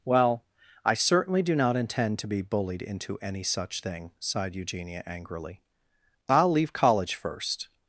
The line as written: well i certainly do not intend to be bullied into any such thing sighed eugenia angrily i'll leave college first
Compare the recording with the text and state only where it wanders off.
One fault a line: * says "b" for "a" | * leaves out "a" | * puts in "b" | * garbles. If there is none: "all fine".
all fine